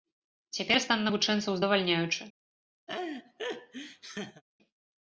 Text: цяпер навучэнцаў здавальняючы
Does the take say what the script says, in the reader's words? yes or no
no